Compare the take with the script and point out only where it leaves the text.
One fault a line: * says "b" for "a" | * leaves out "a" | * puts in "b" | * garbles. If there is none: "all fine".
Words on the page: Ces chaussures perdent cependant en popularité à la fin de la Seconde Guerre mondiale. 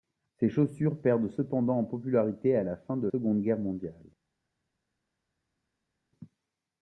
* leaves out "la"